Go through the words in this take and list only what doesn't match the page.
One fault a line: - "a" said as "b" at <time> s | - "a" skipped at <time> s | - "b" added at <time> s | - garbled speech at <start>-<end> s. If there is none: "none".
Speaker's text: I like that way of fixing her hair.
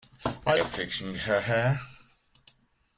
- "like that way" skipped at 0.6 s